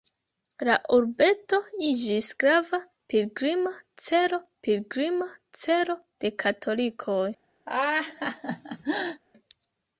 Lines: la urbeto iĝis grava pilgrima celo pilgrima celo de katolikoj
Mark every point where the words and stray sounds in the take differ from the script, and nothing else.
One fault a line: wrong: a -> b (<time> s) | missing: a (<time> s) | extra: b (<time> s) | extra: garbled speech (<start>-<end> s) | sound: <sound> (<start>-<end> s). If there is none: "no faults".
sound: laugh (7.7-9.2 s)